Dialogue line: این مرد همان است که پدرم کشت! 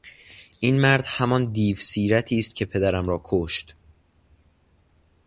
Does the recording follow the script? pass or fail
fail